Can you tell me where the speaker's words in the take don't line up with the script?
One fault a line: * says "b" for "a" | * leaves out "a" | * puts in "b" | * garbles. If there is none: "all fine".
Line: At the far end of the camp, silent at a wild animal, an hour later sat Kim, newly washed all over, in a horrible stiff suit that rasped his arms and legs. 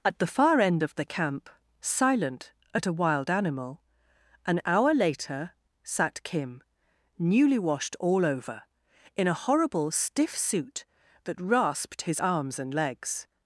all fine